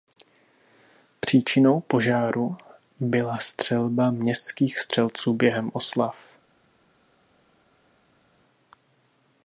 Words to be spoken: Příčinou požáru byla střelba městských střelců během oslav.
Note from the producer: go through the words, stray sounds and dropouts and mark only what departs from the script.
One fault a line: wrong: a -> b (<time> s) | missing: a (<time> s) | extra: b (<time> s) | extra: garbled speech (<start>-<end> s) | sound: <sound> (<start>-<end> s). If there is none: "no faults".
no faults